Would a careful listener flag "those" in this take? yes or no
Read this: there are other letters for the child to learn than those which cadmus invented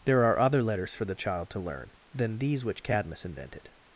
yes